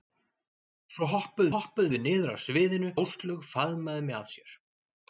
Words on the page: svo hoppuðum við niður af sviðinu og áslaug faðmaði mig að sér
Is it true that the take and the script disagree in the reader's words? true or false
true